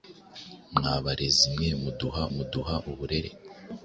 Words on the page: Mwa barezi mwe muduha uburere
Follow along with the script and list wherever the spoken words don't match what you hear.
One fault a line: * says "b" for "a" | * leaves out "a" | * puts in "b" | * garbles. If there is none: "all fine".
* puts in "muduha"